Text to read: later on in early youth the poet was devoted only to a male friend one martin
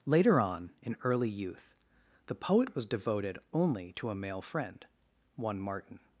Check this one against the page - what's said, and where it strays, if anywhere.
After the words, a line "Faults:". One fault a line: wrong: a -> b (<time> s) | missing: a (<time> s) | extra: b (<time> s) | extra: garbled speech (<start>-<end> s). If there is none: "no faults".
later on in early youth the poet was devoted only to a male friend one martin
Faults:
no faults